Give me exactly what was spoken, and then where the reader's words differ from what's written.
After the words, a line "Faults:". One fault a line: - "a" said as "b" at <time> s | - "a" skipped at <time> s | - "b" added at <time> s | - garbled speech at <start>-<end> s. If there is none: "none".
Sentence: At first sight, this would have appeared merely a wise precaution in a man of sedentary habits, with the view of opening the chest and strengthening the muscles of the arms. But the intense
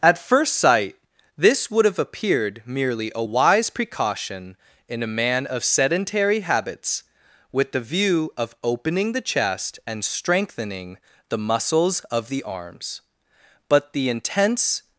At first sight, this would have appeared merely a wise precaution in a man of sedentary habits, with the view of opening the chest and strengthening the muscles of the arms. But the intense
Faults:
none